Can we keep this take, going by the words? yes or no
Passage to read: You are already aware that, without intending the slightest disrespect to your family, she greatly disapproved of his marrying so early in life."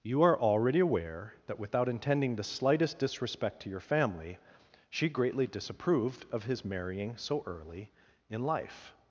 yes